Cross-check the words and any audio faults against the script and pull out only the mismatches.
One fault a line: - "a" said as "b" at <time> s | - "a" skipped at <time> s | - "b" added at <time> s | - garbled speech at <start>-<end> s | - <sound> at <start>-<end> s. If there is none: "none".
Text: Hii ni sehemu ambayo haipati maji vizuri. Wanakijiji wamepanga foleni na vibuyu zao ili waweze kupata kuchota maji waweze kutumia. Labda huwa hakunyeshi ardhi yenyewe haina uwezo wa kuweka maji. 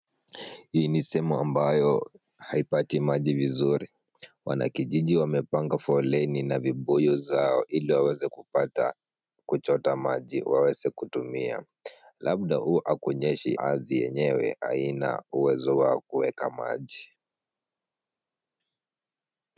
none